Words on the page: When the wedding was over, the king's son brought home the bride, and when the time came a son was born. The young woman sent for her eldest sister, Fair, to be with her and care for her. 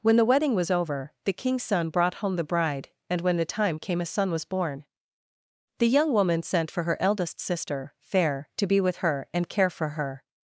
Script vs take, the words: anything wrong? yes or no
no